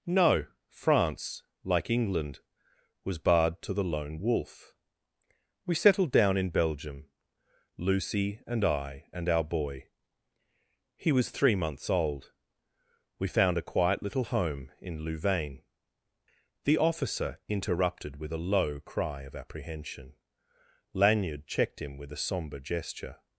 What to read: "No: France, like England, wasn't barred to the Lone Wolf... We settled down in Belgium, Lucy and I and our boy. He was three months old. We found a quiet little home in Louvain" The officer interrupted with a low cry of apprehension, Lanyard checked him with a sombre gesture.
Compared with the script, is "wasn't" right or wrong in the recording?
wrong